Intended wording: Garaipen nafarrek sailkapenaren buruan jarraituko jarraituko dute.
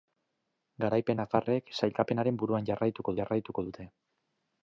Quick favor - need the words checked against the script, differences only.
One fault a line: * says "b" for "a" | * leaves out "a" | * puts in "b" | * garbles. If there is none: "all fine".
all fine